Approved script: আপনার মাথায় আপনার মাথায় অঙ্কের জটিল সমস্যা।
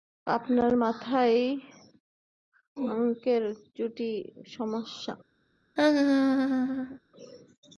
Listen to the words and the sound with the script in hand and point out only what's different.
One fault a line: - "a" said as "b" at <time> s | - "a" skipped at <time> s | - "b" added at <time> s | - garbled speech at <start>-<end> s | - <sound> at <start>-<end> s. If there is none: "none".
- "আপনার মাথায়" skipped at 1.4 s
- laugh at 5.8-7.0 s